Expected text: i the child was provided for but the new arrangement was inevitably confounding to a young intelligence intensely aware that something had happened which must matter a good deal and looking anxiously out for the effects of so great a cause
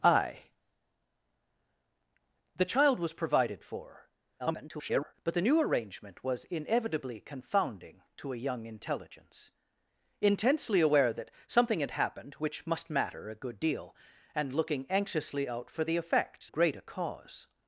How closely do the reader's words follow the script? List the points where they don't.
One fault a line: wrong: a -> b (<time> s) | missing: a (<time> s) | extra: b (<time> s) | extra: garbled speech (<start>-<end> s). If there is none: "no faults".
extra: garbled speech (4.4-5.1 s)
missing: of so (16.5 s)